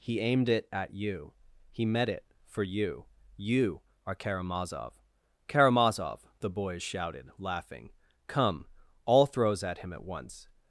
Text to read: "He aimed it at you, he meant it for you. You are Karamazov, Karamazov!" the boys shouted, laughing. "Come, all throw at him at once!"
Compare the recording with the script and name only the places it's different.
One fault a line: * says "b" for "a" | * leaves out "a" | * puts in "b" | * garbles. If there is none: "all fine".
* says "met" for "meant"
* says "throws" for "throw"